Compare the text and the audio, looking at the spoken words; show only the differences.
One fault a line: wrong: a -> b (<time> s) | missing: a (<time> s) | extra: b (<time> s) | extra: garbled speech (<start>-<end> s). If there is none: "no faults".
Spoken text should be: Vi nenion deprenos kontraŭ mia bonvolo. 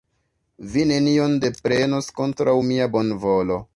no faults